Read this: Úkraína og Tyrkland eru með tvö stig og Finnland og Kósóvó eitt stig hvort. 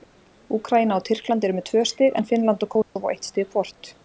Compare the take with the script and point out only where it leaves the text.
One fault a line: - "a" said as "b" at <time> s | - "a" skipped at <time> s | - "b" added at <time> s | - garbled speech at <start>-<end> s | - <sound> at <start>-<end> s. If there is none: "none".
- "og" said as "en" at 2.2 s
- dropout at 2.8-3.0 s